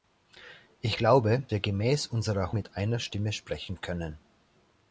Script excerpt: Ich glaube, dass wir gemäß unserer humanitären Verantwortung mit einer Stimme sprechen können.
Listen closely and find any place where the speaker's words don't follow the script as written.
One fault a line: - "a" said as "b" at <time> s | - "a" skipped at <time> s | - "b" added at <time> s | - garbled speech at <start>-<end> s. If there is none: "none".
- "dass" skipped at 1.4 s
- "humanitären Verantwortung" skipped at 2.5 s